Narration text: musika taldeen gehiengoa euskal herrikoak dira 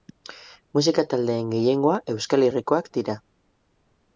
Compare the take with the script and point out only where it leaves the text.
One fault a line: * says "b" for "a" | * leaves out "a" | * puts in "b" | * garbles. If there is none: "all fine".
all fine